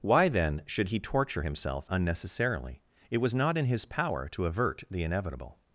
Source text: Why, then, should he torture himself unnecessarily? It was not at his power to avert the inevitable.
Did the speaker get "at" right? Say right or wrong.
wrong